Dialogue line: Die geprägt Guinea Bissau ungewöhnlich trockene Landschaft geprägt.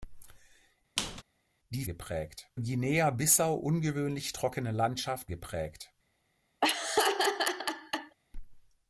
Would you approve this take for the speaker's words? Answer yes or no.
yes